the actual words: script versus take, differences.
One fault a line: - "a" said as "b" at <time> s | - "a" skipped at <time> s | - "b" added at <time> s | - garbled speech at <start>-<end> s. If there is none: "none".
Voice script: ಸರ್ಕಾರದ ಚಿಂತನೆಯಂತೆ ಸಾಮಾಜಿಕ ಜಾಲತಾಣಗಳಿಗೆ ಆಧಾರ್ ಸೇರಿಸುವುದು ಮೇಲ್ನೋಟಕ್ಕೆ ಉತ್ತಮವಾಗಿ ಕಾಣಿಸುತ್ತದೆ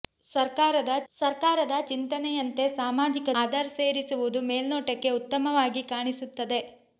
- "ಸರ್ಕಾರದ" added at 1.1 s
- "ಜಾಲತಾಣಗಳಿಗೆ" skipped at 3.3 s